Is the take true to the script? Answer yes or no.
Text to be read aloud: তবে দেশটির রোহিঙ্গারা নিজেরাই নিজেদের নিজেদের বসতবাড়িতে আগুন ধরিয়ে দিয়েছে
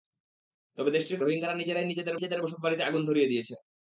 yes